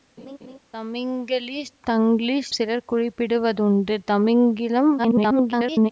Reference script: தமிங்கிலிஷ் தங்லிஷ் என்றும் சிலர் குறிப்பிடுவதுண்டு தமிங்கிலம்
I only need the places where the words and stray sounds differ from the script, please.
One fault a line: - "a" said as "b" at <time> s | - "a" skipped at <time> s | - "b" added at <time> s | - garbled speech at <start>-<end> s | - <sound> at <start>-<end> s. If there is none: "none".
- laugh at 0.2-0.6 s
- "என்றும்" skipped at 2.5 s
- garbled speech at 5.0-5.9 s